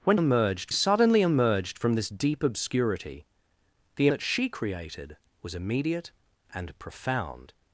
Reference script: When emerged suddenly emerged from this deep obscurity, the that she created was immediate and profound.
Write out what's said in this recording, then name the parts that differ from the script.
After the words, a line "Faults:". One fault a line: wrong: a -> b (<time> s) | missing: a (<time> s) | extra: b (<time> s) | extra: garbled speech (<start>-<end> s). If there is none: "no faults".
When emerged suddenly emerged from this deep obscurity, the that she created was immediate and profound.
Faults:
no faults